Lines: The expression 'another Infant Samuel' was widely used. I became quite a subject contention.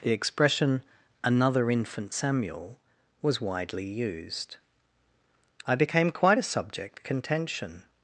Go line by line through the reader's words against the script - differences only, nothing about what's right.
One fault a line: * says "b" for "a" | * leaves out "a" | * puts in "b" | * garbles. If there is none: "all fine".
all fine